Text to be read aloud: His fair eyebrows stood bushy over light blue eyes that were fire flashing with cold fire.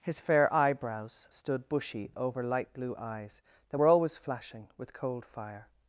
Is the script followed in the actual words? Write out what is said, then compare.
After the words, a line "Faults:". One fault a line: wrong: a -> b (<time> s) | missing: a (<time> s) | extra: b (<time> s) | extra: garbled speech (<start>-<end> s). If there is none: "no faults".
His fair eyebrows stood bushy over light blue eyes that were always flashing with cold fire.
Faults:
wrong: fire -> always (3.9 s)